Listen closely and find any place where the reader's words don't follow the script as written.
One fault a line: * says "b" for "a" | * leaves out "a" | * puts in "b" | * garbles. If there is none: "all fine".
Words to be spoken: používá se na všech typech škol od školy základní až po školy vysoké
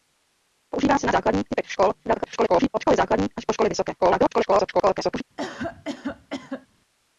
* says "základní" for "všech"
* garbles
* garbles